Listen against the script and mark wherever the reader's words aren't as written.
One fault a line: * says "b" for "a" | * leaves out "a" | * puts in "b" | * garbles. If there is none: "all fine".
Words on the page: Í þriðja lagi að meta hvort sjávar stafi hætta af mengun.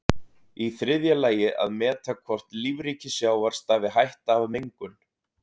* puts in "lífríki"